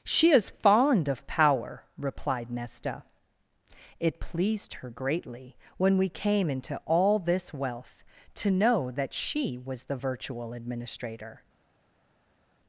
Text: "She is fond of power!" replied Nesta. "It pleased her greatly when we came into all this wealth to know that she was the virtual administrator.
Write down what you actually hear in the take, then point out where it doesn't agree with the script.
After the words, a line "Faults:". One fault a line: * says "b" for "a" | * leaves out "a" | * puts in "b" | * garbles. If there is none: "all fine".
"She is fond of power!" replied Nesta. "It pleased her greatly when we came into all this wealth to know that she was the virtual administrator.
Faults:
all fine